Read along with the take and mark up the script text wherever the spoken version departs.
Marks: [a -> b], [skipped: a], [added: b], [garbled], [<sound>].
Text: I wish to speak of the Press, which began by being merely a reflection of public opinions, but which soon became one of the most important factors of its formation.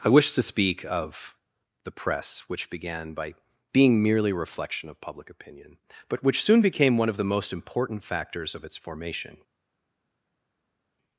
I wish to speak of the Press, which began by being merely a reflection of public [opinions, -> opinion] but which soon became one of the most important factors of its formation.